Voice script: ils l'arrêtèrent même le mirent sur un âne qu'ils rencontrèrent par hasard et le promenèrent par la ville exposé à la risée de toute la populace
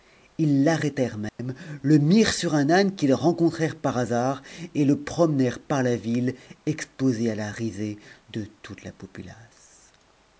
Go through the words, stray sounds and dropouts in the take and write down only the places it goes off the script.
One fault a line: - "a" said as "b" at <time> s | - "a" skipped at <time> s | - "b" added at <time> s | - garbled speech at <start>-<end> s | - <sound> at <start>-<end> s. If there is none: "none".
- dropout at 1.3-1.4 s